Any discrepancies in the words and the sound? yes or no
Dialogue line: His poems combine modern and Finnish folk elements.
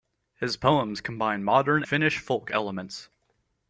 yes